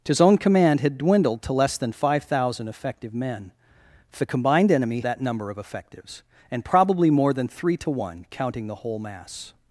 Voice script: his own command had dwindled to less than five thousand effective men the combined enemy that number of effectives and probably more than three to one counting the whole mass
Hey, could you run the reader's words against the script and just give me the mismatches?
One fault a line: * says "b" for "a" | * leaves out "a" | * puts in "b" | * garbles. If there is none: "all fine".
all fine